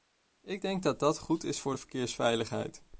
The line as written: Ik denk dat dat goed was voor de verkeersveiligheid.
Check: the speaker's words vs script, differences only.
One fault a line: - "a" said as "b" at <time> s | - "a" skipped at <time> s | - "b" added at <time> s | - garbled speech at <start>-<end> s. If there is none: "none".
- "was" said as "is" at 1.4 s